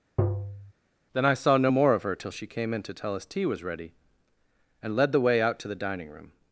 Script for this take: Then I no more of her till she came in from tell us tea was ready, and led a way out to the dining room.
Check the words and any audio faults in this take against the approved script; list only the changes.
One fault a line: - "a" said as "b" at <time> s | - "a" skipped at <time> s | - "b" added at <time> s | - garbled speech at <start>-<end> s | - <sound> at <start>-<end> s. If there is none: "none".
- tap at 0.2-0.7 s
- "saw" added at 1.3 s
- "from" said as "to" at 2.8 s
- "a" said as "the" at 5.1 s